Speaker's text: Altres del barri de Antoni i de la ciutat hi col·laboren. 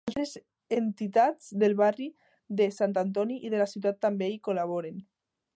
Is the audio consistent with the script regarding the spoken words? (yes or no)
no